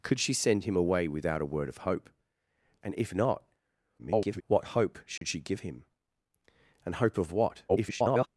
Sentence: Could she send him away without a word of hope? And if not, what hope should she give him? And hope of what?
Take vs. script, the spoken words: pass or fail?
fail